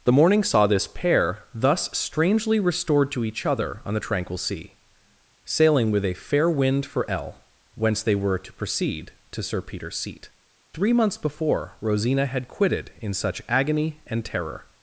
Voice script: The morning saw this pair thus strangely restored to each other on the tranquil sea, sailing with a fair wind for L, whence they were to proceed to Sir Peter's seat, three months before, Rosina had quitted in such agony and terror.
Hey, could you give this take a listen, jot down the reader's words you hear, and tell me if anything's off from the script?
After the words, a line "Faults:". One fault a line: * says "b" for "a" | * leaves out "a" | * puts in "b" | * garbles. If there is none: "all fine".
The morning saw this pair thus strangely restored to each other on the tranquil sea, sailing with a fair wind for L, whence they were to proceed to Sir Peter's seat, three months before, Rosina had quitted in such agony and terror.
Faults:
all fine